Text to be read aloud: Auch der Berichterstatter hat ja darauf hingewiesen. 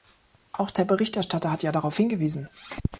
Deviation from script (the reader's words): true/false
false